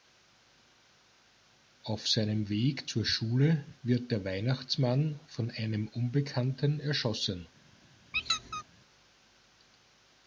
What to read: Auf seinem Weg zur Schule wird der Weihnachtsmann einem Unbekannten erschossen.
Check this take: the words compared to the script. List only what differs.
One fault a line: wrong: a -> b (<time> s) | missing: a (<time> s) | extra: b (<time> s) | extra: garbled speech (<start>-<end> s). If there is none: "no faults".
extra: von (5.3 s)